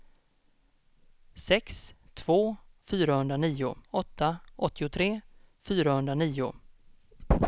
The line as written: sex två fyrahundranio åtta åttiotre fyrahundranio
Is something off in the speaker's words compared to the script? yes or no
no